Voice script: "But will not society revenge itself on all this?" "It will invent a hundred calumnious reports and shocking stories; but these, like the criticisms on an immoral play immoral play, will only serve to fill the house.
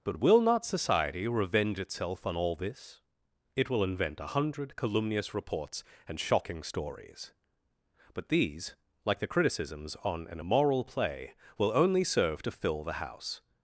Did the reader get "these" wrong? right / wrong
right